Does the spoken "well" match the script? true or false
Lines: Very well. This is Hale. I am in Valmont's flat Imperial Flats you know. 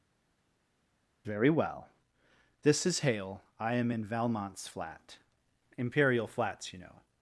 true